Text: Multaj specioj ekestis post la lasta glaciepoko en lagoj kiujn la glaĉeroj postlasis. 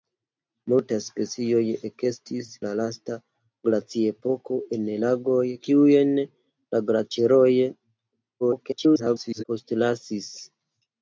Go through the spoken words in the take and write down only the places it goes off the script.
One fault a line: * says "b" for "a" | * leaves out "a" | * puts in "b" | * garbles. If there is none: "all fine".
* leaves out "post"
* garbles